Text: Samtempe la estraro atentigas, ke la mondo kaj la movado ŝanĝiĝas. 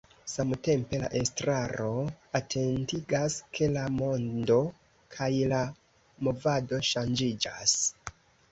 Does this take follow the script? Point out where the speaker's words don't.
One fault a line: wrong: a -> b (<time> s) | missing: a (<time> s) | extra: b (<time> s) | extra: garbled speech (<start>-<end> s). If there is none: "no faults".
no faults